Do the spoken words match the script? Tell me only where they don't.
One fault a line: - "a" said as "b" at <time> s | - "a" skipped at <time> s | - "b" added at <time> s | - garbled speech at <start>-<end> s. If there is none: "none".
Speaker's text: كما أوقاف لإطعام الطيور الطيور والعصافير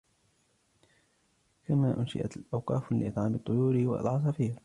- "أنشئت" added at 2.0 s
- "الطيور" skipped at 3.8 s